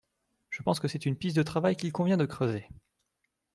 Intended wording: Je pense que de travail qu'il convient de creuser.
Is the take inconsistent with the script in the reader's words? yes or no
yes